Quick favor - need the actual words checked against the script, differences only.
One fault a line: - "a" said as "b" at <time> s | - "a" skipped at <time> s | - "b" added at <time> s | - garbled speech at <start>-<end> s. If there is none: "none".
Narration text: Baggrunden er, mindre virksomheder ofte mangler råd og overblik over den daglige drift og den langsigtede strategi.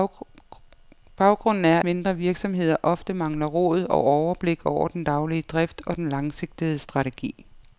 none